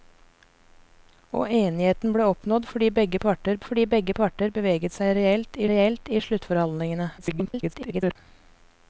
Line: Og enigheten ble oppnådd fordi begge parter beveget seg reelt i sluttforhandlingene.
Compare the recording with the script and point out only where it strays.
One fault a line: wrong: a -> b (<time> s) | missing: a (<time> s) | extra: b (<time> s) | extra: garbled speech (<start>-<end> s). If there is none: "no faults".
extra: fordi begge parter (3.7 s)
extra: reelt (5.7 s)
extra: garbled speech (7.2-8.2 s)